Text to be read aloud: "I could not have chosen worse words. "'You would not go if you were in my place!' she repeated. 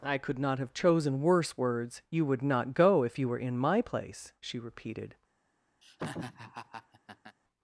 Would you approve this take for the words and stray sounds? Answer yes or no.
no